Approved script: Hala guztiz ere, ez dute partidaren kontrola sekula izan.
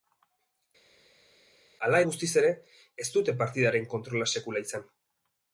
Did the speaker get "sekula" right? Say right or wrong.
right